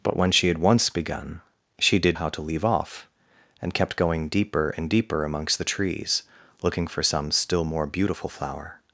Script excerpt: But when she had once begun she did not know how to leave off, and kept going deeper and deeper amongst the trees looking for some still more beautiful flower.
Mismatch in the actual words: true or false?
true